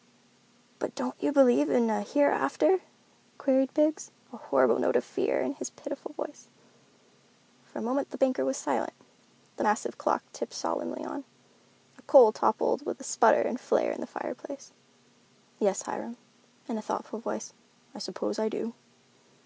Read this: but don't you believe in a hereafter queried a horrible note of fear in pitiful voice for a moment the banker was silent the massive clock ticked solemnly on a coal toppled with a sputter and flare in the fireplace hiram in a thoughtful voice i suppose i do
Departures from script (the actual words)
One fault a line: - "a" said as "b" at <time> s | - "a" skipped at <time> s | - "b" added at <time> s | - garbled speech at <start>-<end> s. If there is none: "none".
- "biggs" added at 3.8 s
- "his" added at 5.5 s
- "yes" added at 15.6 s